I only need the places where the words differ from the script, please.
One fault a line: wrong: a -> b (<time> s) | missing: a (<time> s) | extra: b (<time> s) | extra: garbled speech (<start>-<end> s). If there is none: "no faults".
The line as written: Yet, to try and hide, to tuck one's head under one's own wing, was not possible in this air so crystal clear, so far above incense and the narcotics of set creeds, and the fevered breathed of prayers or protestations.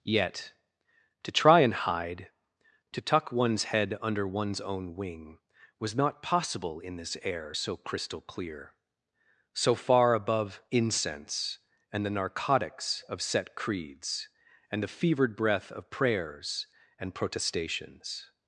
wrong: breathed -> breath (15.3 s)
wrong: or -> and (17.0 s)